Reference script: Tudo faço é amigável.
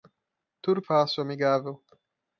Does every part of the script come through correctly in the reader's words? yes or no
yes